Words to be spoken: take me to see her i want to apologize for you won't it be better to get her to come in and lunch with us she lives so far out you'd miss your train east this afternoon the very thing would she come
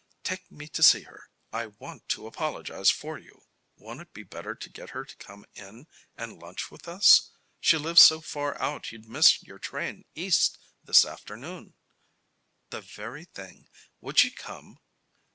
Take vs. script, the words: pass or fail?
pass